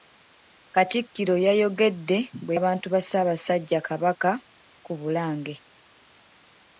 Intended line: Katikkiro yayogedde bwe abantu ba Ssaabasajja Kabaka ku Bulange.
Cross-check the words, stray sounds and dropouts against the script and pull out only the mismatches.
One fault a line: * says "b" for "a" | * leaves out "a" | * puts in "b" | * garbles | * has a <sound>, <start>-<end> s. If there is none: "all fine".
all fine